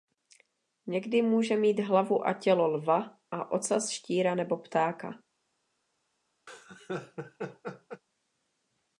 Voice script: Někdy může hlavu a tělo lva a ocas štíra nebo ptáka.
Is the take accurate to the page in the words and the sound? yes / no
no